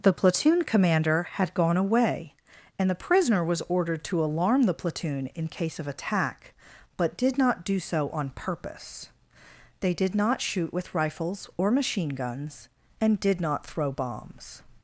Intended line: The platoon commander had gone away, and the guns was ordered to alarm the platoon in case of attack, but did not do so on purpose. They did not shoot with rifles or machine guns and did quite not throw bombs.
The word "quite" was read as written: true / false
false